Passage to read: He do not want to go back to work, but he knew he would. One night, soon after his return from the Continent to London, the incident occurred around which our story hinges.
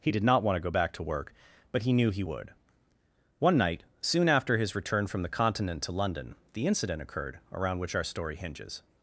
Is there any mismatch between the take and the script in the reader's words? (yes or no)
yes